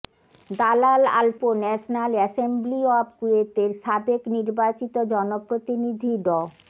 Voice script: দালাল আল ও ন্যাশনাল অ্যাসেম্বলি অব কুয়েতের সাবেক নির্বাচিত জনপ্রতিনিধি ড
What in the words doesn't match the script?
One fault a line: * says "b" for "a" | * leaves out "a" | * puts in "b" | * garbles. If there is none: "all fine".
all fine